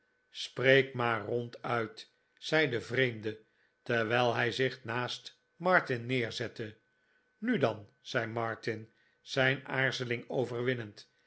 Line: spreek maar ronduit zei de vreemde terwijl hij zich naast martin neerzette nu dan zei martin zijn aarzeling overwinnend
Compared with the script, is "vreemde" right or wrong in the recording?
right